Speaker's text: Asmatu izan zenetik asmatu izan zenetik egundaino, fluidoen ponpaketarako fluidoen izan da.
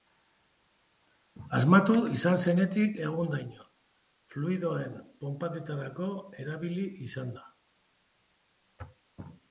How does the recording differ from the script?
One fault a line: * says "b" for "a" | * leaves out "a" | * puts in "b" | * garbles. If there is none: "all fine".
* leaves out "asmatu izan zenetik"
* says "erabili" for "fluidoen"